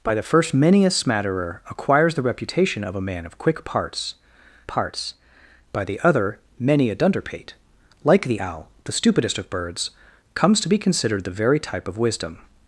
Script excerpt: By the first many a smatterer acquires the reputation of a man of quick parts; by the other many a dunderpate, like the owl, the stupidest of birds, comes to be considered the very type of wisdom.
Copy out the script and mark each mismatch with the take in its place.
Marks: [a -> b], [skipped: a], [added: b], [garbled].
By the first many a smatterer acquires the reputation of a man of quick parts; [added: parts] by the other many a dunderpate, like the owl, the stupidest of birds, comes to be considered the very type of wisdom.